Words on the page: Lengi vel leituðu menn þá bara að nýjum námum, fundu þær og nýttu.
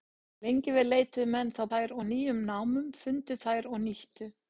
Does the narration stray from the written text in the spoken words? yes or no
yes